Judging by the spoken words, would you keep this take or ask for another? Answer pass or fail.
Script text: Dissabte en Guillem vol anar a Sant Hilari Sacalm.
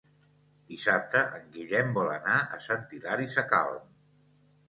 pass